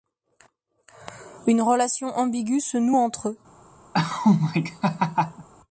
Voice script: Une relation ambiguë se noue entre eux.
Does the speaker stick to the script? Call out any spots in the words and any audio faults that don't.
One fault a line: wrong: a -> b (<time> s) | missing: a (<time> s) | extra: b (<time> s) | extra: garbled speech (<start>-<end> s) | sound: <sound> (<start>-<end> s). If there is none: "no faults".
sound: laugh (3.9-5.5 s)